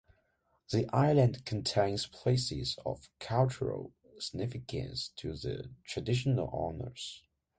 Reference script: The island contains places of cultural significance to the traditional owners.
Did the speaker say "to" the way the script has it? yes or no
yes